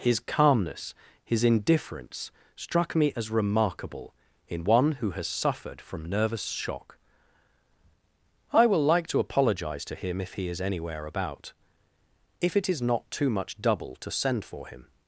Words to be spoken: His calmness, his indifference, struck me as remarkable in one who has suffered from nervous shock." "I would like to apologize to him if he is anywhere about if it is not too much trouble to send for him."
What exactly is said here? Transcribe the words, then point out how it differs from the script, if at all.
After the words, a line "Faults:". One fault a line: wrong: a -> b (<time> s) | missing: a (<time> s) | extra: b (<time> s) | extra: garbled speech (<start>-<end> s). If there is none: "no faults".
His calmness, his indifference, struck me as remarkable in one who has suffered from nervous shock." "I will like to apologize to him if he is anywhere about if it is not too much double to send for him."
Faults:
wrong: would -> will (8.6 s)
wrong: trouble -> double (13.6 s)